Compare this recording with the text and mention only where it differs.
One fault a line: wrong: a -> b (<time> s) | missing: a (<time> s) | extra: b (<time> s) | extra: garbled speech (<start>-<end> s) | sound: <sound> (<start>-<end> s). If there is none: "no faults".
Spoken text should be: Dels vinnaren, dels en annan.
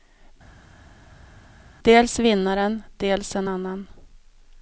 no faults